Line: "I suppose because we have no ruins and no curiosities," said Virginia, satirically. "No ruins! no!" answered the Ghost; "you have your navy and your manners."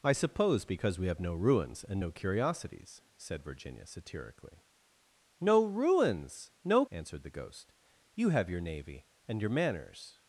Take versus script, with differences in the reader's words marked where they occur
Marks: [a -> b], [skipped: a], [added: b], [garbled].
"I suppose because we have no ruins and no curiosities," said Virginia, satirically. "No ruins! no!" answered the Ghost; "you have your navy and your manners."